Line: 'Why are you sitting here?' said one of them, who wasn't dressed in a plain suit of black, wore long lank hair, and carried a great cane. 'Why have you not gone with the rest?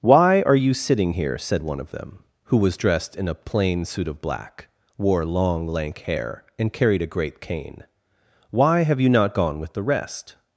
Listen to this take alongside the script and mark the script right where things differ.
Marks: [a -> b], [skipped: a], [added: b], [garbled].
'Why are you sitting here?' said one of them, who [wasn't -> was] dressed in a plain suit of black, wore long lank hair, and carried a great cane. 'Why have you not gone with the rest?